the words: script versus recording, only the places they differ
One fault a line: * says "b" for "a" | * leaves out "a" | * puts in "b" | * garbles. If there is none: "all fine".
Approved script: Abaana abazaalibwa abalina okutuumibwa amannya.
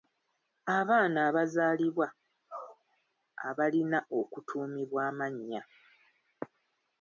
all fine